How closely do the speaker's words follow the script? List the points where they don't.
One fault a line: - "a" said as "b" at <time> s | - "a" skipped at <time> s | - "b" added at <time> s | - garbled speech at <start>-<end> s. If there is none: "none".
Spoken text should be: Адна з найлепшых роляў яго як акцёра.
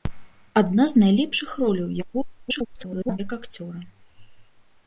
- garbled speech at 2.4-3.2 s